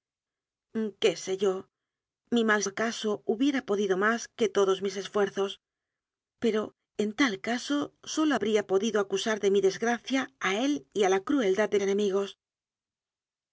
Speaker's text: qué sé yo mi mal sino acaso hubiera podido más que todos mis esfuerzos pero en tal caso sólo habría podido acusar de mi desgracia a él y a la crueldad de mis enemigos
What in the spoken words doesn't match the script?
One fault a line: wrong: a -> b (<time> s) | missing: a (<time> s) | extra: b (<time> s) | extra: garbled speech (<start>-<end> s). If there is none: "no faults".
missing: sino (2.6 s)
missing: mis (11.8 s)